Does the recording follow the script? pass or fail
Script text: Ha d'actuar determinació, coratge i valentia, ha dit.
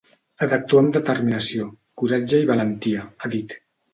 fail